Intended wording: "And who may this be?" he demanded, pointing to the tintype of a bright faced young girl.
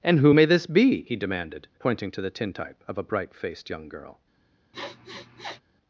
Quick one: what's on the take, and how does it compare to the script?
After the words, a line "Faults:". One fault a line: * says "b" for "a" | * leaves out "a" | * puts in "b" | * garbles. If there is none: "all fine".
"And who may this be?" he demanded, pointing to the tintype of a bright faced young girl.
Faults:
all fine